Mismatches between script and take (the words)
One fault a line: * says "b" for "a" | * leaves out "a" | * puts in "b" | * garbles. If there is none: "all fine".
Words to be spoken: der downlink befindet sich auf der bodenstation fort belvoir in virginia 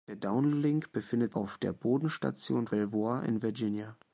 * leaves out "sich"
* leaves out "fort"